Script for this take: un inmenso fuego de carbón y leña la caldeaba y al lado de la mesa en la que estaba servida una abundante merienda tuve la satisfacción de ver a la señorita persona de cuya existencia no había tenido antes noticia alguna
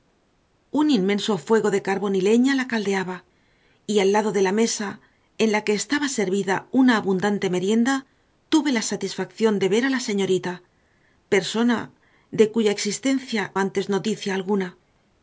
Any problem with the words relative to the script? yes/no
yes